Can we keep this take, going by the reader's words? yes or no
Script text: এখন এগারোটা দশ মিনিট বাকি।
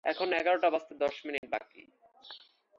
no